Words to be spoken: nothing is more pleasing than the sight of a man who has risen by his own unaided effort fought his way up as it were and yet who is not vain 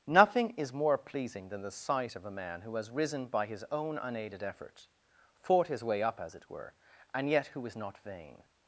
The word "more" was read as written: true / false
true